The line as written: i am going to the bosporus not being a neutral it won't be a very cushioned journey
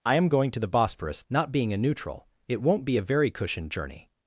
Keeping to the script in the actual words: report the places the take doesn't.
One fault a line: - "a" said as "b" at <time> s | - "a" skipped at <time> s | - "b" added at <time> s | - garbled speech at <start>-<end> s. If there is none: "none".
none